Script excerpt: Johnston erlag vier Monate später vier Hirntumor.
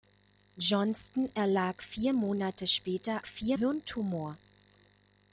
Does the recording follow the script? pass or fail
pass